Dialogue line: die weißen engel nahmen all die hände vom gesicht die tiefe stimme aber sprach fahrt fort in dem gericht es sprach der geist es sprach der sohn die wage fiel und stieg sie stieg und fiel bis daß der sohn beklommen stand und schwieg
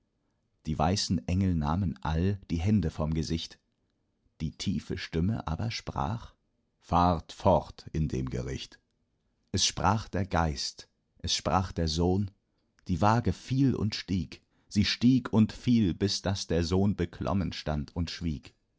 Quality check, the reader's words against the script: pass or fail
pass